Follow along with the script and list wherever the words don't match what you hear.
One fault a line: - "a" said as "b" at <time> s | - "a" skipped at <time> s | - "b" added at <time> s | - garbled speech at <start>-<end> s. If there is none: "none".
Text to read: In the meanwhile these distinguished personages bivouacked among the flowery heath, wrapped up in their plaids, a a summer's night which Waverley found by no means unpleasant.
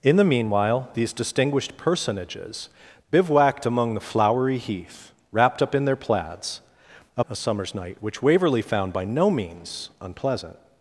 none